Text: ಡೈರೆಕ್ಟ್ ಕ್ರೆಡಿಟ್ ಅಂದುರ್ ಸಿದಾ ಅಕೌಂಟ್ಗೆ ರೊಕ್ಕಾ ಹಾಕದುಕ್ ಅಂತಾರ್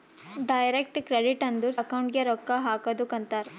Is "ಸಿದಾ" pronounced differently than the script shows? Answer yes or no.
yes